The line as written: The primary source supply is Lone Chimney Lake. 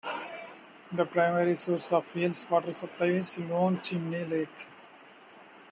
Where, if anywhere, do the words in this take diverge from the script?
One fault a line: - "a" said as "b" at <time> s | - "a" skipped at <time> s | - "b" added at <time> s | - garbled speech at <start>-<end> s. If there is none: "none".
- "of Yale's water" added at 1.9 s